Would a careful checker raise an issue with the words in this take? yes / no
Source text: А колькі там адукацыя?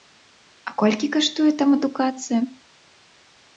yes